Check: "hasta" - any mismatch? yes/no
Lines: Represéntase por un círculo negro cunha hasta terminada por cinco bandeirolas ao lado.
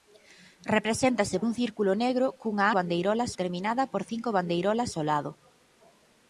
yes